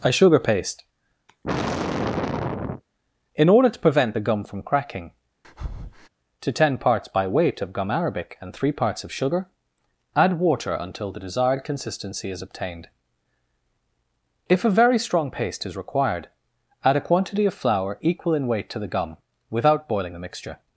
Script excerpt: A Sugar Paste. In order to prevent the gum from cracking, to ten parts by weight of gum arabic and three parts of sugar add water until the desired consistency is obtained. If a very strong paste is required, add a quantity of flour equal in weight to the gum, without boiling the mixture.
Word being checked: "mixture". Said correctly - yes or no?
yes